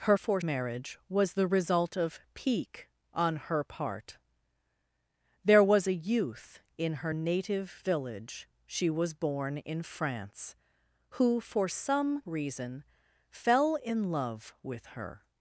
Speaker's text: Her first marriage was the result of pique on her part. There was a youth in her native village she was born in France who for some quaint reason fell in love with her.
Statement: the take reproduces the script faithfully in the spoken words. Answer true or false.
false